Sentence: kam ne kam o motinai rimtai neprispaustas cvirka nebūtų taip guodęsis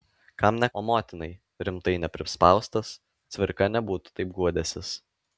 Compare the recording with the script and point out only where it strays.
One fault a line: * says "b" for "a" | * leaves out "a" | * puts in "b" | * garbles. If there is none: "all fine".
* leaves out "kam"